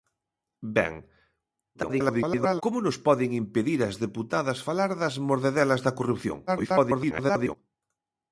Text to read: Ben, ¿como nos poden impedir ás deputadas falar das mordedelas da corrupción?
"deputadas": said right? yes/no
yes